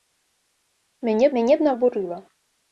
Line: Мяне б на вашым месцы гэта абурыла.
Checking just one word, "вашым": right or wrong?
wrong